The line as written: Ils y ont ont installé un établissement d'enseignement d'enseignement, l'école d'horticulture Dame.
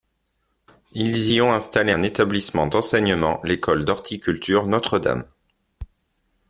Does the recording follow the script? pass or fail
fail